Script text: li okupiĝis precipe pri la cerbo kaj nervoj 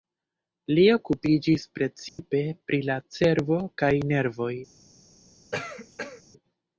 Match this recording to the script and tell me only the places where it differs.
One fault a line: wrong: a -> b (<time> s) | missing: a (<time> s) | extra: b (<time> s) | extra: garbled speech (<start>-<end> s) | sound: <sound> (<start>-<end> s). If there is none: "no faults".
sound: dropout (2.1-2.2 s)
sound: cough (5.5-6.2 s)